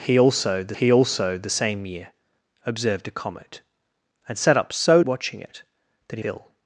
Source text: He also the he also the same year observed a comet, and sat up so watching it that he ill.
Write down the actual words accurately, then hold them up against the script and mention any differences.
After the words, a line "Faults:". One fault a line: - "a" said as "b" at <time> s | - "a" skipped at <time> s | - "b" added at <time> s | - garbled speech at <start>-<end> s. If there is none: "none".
He also the he also the same year observed a comet, and sat up so watching it that he ill.
Faults:
none